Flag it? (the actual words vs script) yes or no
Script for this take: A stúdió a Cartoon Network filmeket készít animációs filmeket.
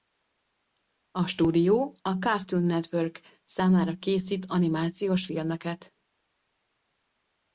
yes